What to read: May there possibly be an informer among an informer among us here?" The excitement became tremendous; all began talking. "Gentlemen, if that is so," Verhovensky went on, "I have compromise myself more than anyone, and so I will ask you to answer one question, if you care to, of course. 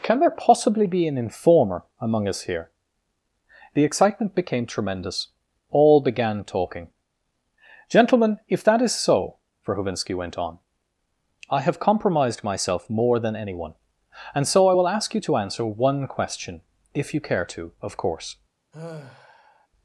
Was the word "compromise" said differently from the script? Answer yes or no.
yes